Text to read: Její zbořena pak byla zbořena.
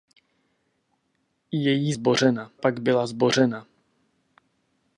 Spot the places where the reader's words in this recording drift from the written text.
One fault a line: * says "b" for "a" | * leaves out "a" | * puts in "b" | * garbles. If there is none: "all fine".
all fine